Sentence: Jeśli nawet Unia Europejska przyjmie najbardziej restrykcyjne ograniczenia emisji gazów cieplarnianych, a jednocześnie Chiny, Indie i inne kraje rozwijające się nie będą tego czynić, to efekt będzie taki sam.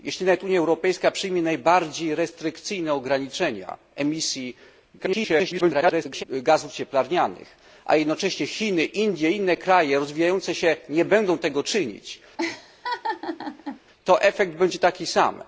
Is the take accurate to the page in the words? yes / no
no